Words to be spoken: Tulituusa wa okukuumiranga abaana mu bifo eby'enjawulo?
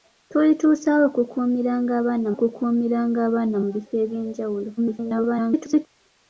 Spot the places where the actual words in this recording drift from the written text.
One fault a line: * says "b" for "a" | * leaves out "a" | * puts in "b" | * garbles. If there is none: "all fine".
* puts in "okukuumiranga abaana"
* garbles